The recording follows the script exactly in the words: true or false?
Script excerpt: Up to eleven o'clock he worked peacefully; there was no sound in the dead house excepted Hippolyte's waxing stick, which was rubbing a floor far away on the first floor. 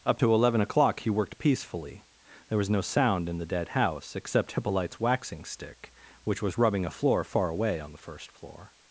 false